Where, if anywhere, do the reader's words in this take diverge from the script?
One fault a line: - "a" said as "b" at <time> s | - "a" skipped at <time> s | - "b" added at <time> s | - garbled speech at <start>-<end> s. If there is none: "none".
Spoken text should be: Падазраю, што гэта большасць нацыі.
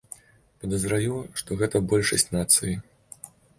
none